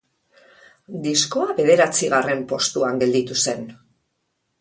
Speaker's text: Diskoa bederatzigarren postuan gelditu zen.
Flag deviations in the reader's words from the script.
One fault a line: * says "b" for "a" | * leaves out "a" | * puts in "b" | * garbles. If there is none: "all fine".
all fine